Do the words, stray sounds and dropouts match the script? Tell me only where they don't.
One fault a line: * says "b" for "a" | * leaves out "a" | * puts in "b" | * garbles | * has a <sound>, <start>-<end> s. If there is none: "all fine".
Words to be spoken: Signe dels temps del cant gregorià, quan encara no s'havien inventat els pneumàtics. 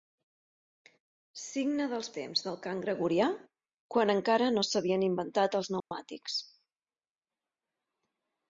* has a dropout, 5.8-5.9 s